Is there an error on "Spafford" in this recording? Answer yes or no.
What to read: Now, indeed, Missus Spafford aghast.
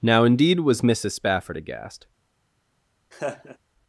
no